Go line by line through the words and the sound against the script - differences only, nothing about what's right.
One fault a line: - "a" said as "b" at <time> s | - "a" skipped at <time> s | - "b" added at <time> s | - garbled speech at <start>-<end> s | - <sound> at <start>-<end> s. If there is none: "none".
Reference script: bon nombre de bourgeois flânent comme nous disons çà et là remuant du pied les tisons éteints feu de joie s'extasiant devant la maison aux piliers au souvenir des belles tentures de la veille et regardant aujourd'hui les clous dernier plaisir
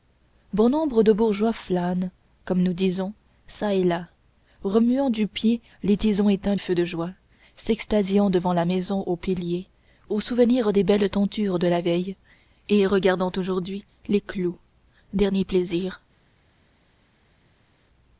none